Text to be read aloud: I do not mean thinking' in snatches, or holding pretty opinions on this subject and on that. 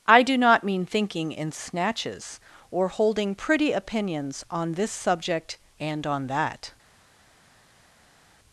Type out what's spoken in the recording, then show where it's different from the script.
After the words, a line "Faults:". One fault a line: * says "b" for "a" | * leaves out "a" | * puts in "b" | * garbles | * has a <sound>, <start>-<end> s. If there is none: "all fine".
I do not mean thinking' in snatches, or holding pretty opinions on this subject and on that.
Faults:
all fine